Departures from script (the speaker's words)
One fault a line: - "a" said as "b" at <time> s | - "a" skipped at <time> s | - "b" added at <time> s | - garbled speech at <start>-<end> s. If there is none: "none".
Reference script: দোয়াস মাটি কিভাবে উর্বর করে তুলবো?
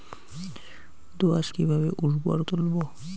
- "মাটি" skipped at 1.5 s
- "করে" skipped at 2.4 s